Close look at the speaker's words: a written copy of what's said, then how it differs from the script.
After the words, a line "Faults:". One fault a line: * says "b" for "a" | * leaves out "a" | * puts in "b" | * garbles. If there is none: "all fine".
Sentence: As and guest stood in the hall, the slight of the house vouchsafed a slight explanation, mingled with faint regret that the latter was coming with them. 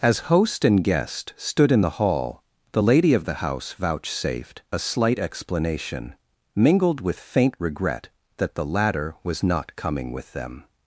As host and guest stood in the hall, the lady of the house vouchsafed a slight explanation, mingled with faint regret that the latter was not coming with them.
Faults:
* puts in "host"
* says "lady" for "slight"
* puts in "not"